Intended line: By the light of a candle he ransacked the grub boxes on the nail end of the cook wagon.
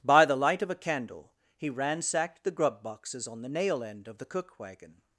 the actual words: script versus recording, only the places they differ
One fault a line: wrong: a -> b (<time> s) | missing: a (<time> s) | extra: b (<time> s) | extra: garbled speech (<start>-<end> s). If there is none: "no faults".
no faults